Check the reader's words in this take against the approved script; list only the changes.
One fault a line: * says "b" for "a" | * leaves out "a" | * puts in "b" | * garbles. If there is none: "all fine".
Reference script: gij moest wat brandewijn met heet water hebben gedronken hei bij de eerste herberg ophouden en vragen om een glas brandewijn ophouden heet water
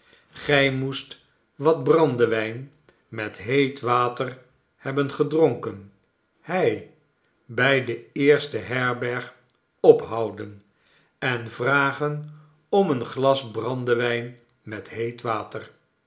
* says "met" for "ophouden"